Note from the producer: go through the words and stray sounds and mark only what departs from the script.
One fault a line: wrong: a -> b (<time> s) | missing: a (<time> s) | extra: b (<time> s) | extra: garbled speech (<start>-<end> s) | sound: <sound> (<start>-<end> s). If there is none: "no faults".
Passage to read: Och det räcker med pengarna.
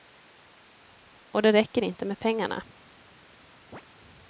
extra: inte (1.8 s)
sound: chirp (3.7-3.8 s)